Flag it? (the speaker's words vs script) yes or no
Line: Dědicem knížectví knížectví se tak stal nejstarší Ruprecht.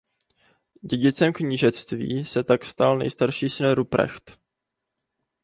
yes